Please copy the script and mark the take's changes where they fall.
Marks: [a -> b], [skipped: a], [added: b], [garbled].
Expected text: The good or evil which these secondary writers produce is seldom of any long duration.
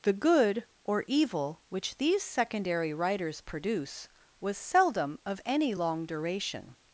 The good or evil which these secondary writers produce [is -> was] seldom of any long duration.